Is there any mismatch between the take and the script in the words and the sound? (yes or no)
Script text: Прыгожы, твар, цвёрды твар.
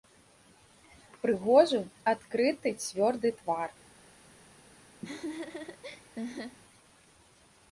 yes